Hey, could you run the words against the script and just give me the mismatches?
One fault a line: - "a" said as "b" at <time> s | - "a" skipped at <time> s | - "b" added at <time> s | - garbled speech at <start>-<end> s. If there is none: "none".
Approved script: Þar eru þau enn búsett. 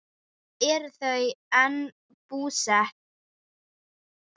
none